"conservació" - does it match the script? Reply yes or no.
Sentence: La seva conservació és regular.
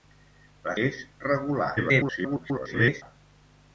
no